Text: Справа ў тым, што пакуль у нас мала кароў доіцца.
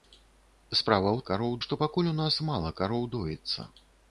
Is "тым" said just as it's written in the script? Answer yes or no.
no